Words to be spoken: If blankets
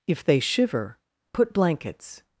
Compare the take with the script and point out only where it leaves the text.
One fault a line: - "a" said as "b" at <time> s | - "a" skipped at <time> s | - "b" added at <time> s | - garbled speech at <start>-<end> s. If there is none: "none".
- "they shiver put" added at 0.2 s